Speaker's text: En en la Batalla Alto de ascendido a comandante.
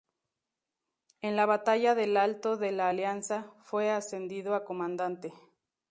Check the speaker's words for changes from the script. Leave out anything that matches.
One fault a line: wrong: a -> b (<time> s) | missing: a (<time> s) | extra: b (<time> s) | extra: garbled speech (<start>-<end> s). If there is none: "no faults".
missing: en (1.4 s)
extra: del (1.9 s)
extra: la Alianza fue (2.7 s)